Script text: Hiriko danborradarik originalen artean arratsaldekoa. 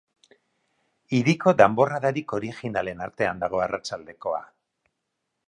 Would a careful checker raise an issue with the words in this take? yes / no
yes